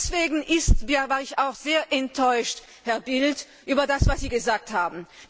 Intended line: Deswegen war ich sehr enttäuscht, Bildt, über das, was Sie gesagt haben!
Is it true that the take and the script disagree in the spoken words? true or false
true